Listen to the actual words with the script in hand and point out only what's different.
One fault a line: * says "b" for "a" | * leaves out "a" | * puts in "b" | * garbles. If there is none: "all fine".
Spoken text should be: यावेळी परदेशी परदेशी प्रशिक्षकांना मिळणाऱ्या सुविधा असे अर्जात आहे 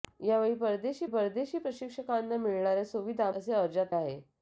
all fine